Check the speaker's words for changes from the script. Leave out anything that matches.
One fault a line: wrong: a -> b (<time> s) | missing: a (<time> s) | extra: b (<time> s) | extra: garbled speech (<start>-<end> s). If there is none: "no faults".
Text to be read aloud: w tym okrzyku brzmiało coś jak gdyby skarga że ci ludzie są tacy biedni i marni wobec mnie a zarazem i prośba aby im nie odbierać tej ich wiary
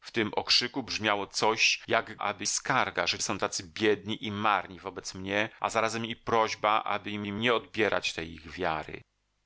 wrong: gdyby -> aby (2.2 s)
missing: ci ludzie (3.2 s)
extra: im (7.2 s)